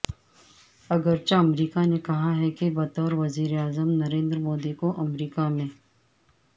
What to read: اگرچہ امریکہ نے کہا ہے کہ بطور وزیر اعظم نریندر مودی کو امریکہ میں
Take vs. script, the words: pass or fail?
pass